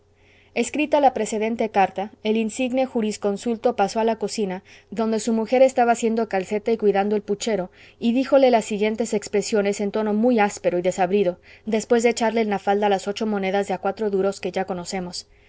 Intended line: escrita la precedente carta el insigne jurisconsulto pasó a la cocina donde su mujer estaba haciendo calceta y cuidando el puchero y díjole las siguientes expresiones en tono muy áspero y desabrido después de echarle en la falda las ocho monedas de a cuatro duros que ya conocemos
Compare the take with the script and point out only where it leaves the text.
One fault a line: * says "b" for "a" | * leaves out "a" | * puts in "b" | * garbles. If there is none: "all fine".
all fine